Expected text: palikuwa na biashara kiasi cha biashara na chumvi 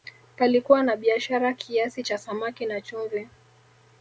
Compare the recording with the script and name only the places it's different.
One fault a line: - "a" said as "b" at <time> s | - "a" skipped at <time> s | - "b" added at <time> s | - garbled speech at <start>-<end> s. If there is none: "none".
- "biashara" said as "samaki" at 2.2 s